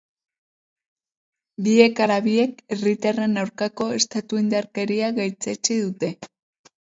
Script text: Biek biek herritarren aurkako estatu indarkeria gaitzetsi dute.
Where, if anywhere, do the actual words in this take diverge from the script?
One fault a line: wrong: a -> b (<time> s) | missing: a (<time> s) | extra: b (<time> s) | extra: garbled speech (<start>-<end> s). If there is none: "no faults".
extra: ala (2.0 s)